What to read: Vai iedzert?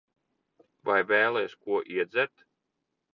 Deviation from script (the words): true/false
true